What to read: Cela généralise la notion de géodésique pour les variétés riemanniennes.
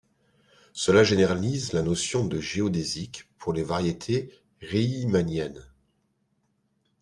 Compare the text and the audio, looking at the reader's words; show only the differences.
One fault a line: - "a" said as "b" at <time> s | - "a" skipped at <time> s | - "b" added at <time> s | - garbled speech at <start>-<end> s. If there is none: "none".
none